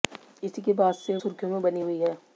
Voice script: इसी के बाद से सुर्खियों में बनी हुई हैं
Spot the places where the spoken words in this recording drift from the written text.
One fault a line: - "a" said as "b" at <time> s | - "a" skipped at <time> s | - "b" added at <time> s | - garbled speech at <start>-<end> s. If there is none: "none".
none